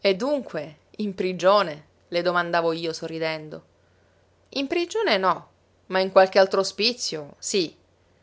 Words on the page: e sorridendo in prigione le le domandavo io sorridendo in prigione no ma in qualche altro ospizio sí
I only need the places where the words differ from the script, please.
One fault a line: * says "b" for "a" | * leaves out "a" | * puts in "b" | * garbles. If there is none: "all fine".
* says "dunque" for "sorridendo"
* leaves out "le"